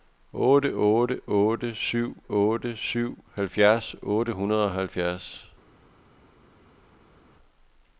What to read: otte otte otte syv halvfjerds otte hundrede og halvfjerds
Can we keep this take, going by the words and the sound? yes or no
no